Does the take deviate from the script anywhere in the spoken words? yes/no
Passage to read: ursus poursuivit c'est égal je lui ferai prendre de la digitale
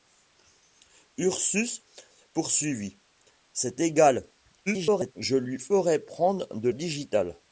yes